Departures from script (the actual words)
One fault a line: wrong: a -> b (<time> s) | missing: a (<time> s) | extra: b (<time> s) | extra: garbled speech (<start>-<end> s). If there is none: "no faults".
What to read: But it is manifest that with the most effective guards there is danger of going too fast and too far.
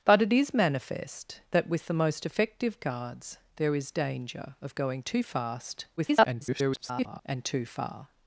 extra: garbled speech (6.0-7.2 s)